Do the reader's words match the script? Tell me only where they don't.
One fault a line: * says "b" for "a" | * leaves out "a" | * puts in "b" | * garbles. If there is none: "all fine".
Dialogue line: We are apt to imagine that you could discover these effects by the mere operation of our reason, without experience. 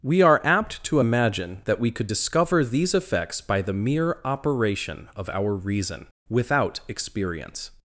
* says "we" for "you"